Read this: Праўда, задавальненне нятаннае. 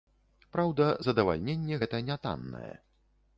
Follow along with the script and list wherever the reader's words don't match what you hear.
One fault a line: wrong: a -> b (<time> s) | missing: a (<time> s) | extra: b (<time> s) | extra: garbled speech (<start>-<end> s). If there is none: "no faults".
extra: гэта (1.8 s)